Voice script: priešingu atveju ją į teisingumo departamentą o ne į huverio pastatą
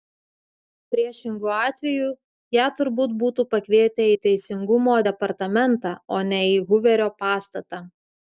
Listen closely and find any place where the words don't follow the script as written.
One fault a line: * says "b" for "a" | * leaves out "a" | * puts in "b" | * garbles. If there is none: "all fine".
* puts in "turbūt būtų pakvietę"